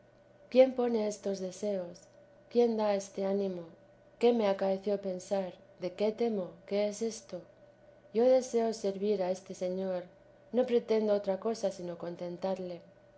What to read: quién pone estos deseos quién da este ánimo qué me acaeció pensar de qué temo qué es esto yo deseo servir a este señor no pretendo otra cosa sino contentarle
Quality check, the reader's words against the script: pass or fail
pass